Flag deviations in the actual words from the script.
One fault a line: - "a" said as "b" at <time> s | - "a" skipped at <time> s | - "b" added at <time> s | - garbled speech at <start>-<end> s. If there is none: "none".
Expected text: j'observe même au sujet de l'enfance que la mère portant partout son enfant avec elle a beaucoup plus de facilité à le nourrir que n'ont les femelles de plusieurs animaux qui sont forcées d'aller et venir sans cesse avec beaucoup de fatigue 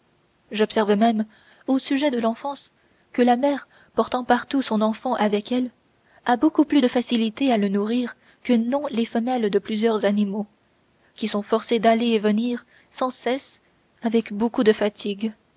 none